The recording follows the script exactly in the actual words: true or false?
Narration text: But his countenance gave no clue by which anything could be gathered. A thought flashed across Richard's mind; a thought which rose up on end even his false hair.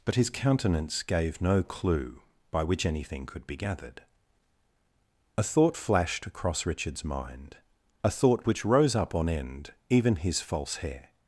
true